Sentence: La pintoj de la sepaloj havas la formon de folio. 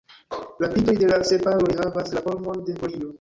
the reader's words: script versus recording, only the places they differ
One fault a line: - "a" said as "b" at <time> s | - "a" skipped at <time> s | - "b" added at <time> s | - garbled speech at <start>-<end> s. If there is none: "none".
none